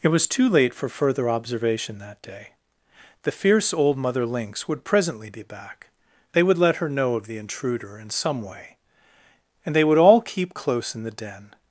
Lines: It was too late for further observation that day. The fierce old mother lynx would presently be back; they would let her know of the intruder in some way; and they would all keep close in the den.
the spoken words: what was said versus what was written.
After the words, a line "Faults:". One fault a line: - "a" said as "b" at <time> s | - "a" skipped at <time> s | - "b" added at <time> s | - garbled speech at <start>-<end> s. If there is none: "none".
It was too late for further observation that day. The fierce old mother lynx would presently be back; they would let her know of the intruder in some way; and they would all keep close in the den.
Faults:
none